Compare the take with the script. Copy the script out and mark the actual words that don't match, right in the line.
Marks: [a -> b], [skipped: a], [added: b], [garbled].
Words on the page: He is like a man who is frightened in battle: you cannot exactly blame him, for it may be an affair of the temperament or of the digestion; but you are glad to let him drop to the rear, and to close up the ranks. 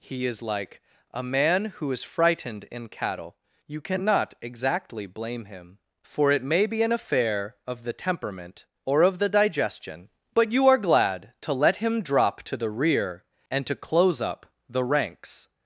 He is like a man who is frightened in [battle: -> cattle] you cannot exactly blame him, for it may be an affair of the temperament or of the digestion; but you are glad to let him drop to the rear, and to close up the ranks.